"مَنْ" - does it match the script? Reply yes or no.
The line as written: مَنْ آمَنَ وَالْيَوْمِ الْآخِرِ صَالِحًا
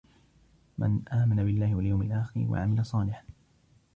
yes